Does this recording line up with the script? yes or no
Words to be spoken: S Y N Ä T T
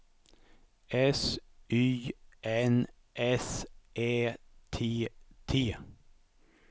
no